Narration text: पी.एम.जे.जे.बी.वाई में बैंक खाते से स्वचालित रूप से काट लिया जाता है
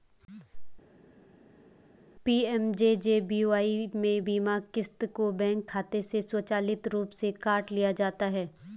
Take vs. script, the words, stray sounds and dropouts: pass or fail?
fail